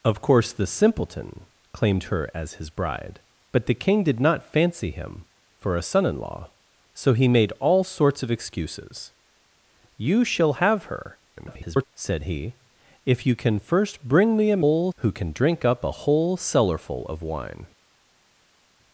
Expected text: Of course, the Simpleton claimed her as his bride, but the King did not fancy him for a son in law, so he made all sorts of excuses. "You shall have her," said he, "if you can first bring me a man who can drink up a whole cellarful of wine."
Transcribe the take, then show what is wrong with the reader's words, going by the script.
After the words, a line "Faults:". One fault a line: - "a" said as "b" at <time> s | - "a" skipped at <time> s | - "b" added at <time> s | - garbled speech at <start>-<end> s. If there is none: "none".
Of course, the Simpleton claimed her as his bride, but the King did not fancy him for a son in law, so he made all sorts of excuses. "You shall have her," [garbled] said he, "if you can first bring me a whole who can drink up a whole cellarful of wine."
Faults:
- garbled speech at 11.4-11.9 s
- "man" said as "whole" at 14.6 s